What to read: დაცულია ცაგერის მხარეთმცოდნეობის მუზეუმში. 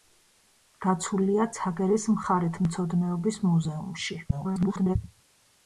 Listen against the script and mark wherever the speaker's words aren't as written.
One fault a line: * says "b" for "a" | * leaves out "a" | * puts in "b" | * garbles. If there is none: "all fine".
* garbles